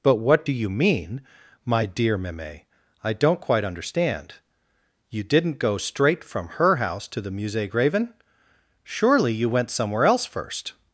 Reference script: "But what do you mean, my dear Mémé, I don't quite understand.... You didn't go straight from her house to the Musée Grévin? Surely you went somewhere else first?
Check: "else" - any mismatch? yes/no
no